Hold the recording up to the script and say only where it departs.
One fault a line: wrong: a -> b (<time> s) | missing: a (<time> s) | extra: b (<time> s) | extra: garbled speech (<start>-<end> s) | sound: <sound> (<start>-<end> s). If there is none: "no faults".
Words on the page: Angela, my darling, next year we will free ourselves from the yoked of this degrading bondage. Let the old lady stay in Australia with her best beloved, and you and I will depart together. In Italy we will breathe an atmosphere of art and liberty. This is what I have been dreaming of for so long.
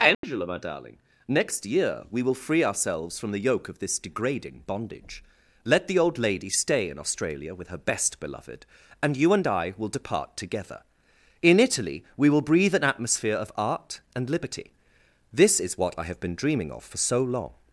sound: dropout (0.1-0.2 s)
wrong: yoked -> yoke (3.4 s)